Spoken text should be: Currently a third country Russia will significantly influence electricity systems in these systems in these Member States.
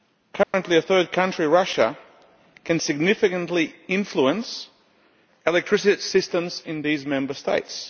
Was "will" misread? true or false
true